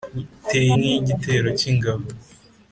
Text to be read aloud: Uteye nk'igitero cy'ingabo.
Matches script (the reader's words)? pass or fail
pass